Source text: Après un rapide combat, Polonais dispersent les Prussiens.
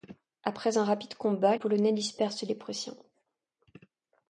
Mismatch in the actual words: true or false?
false